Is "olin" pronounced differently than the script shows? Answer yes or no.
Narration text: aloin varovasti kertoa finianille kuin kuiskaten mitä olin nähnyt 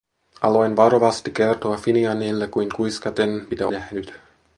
yes